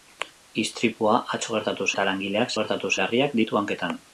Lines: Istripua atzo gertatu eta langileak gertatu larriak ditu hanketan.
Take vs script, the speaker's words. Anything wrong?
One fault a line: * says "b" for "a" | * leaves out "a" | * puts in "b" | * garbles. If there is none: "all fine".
all fine